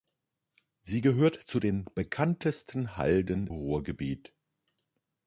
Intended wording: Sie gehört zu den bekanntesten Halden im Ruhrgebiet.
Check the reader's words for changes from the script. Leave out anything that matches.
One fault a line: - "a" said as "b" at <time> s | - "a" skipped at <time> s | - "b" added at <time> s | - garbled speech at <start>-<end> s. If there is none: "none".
- "im" skipped at 3.5 s